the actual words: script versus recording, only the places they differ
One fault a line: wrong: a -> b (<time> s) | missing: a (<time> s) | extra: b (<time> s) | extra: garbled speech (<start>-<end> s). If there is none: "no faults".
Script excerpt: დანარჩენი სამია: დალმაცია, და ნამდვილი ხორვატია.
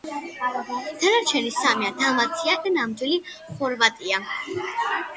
no faults